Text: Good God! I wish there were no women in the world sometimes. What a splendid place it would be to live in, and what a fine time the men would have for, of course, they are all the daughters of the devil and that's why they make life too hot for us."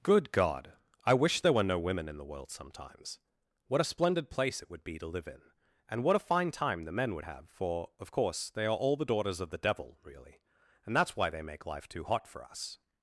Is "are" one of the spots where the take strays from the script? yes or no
no